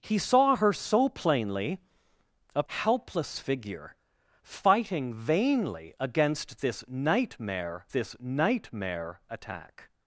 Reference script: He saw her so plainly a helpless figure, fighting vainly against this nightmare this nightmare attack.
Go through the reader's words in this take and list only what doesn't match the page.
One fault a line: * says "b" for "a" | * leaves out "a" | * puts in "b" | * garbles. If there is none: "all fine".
all fine